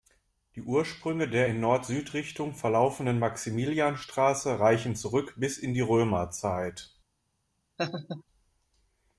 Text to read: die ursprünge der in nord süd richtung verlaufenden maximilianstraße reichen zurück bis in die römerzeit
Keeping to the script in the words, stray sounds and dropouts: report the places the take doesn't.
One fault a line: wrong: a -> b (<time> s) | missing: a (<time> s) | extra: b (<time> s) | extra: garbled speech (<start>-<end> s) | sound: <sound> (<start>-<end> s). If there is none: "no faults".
sound: laugh (7.8-8.2 s)